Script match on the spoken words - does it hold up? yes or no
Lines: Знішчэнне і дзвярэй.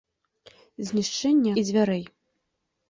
yes